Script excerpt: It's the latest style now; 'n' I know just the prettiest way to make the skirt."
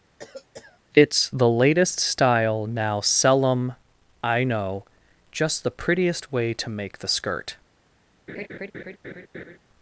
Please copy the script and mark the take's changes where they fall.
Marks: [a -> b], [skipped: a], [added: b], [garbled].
It's the latest style now; ['n' -> sell em] I know just the prettiest way to make the skirt."